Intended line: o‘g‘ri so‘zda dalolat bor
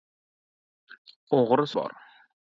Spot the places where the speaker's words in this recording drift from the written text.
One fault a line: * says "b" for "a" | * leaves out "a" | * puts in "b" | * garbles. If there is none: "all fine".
* leaves out "so‘zda dalolat"